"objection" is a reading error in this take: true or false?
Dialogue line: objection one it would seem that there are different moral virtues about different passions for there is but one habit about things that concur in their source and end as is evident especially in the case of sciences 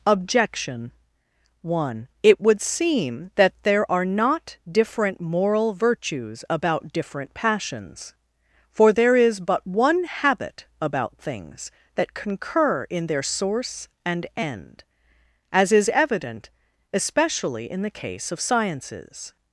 false